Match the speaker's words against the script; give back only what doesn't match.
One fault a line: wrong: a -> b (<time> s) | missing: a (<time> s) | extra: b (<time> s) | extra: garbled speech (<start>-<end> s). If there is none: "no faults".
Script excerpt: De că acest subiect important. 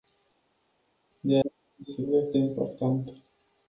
no faults